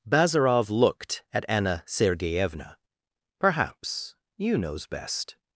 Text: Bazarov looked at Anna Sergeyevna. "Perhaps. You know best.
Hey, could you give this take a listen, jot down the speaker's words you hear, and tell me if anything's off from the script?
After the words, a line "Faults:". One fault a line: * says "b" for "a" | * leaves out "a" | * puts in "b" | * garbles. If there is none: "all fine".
Bazarov looked at Anna Sergeyevna. "Perhaps. You knows best.
Faults:
* says "knows" for "know"